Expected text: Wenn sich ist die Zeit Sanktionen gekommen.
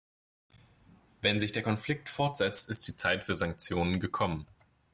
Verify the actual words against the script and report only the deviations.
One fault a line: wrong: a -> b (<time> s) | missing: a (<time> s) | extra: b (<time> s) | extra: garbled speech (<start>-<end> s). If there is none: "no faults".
extra: der Konflikt fortsetzt (1.5 s)
extra: für (3.2 s)